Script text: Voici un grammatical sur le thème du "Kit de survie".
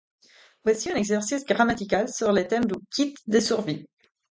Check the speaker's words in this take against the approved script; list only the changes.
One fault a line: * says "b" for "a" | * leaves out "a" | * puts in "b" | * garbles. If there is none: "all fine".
* puts in "exercice"